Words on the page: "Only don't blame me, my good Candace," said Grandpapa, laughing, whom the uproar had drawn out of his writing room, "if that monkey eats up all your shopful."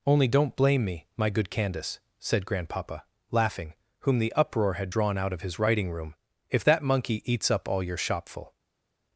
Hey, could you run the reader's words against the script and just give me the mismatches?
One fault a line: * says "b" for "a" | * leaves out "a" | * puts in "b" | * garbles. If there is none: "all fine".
all fine